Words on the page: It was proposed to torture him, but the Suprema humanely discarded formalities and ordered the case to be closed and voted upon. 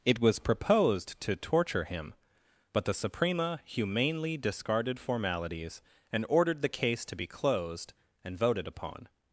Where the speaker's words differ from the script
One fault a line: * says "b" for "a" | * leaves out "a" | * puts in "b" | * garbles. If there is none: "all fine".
all fine